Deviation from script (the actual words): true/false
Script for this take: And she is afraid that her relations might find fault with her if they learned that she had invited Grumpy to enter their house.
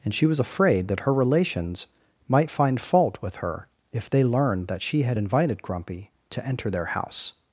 true